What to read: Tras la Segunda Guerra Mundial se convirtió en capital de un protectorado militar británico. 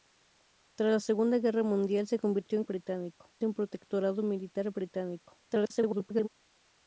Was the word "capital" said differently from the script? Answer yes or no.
yes